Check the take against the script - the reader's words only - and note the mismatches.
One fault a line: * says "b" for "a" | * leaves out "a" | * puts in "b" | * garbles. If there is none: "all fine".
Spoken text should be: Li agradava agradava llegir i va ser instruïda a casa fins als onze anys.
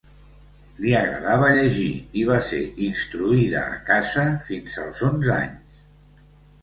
* leaves out "agradava"